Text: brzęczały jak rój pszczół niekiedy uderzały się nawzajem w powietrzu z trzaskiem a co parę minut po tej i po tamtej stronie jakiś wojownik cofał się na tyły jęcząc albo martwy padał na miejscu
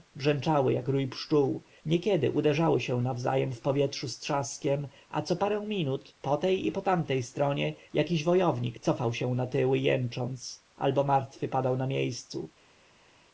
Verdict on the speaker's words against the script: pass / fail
pass